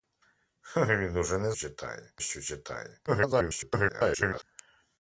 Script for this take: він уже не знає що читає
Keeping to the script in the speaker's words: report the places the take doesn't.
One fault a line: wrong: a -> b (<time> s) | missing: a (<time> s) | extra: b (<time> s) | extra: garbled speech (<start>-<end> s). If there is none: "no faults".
wrong: знає -> читає (1.5 s)
extra: garbled speech (3.1-4.4 s)